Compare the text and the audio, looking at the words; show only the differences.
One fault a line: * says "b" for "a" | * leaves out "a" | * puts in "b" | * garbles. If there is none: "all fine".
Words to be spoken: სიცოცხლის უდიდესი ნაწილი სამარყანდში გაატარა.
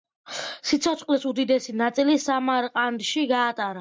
all fine